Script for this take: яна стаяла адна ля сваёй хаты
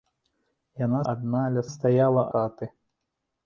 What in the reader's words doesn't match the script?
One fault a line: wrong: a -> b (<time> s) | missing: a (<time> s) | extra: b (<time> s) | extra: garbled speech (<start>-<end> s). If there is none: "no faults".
missing: стаяла (1.0 s)
wrong: сваёй -> стаяла (1.7 s)